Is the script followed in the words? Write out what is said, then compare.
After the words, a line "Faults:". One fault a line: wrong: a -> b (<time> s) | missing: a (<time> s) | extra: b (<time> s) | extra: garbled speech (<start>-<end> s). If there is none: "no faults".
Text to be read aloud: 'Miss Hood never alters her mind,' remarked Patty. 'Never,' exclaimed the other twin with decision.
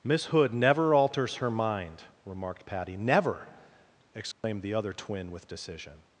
'Miss Hood never alters her mind,' remarked Patty. 'Never,' exclaimed the other twin with decision.
Faults:
no faults